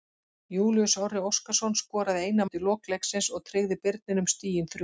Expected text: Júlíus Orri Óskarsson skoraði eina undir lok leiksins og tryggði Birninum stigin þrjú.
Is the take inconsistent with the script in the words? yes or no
no